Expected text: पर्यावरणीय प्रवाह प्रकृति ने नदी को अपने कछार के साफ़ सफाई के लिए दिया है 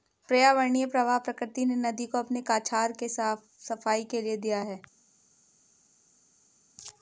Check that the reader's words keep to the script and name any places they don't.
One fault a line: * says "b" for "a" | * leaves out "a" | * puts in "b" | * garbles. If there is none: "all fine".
all fine